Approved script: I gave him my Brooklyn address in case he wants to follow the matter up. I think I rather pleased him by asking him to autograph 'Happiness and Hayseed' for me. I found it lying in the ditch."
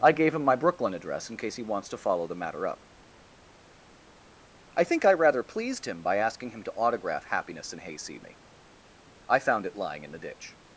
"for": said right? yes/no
no